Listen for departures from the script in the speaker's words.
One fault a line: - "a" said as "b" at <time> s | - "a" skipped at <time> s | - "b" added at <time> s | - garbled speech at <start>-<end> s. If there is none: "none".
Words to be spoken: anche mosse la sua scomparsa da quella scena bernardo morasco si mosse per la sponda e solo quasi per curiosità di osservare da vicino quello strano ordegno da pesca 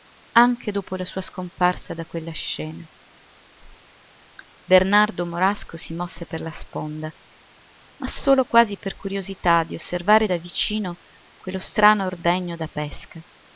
- "mosse" said as "dopo" at 0.7 s
- "e" said as "ma" at 8.0 s